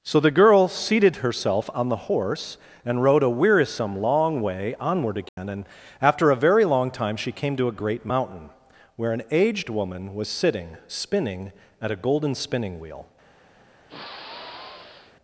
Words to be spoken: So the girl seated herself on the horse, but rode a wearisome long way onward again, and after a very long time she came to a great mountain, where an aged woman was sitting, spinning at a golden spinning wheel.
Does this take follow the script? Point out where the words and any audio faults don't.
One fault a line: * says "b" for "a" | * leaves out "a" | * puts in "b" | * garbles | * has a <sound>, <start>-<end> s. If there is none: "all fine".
* says "and" for "but"
* has a dropout, 5.3-5.4 s
* has a sigh, 13.9-15.2 s